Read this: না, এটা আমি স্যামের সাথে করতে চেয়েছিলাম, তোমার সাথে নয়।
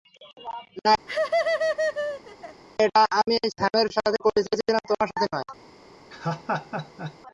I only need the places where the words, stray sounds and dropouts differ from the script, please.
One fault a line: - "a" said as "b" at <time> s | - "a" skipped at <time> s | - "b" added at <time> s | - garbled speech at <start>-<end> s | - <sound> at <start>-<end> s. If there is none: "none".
- laugh at 1.1-2.6 s
- laugh at 6.1-7.2 s